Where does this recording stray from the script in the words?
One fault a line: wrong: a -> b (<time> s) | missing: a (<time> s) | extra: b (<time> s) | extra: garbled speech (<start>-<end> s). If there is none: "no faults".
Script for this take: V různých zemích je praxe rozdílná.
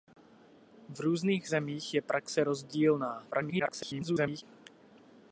extra: garbled speech (3.3-4.4 s)